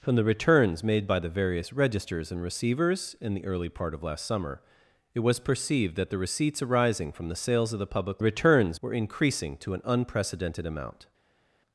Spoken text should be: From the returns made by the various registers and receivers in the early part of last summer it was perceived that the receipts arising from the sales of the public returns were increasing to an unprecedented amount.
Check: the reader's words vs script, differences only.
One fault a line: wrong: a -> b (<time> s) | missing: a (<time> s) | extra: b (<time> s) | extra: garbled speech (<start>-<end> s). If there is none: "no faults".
no faults